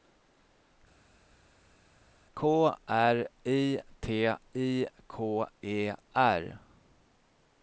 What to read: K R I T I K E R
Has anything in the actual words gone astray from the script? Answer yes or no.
no